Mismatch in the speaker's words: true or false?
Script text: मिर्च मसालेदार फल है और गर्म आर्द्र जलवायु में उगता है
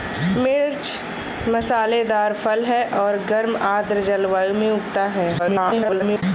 true